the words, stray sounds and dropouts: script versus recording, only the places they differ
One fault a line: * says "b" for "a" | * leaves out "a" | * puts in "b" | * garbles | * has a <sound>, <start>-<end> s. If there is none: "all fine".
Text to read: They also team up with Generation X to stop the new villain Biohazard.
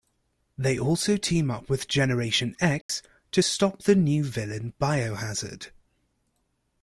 * has a dropout, 2.8-2.9 s